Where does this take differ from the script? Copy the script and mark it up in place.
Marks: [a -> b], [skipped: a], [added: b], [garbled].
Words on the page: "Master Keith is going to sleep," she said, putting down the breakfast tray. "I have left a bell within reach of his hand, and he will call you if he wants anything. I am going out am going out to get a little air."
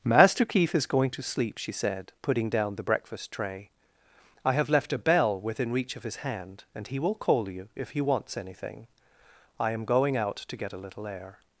"Master Keith is going to sleep," she said, putting down the breakfast tray. "I have left a bell within reach of his hand, and he will call you if he wants anything. I am going out [skipped: am going out] to get a little air."